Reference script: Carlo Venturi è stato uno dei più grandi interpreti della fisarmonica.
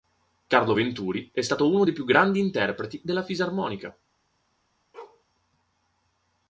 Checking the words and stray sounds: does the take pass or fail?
fail